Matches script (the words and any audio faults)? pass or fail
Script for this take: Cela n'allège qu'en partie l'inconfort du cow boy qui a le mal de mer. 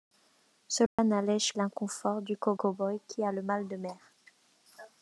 fail